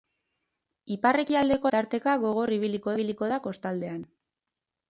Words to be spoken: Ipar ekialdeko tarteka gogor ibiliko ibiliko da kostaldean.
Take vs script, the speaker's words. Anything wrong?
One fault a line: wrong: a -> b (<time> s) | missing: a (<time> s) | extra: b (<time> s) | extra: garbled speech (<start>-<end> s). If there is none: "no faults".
no faults